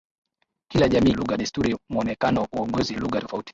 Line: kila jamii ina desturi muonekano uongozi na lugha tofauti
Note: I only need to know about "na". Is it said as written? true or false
false